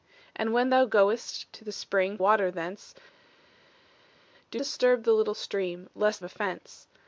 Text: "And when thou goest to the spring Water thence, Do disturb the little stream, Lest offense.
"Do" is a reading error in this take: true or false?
false